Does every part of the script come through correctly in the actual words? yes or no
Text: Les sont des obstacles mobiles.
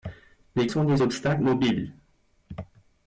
yes